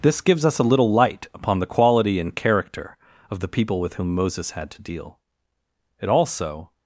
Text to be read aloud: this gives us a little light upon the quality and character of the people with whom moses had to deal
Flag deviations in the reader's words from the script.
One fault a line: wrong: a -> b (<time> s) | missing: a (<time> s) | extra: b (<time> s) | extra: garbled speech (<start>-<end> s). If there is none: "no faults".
extra: it also (6.0 s)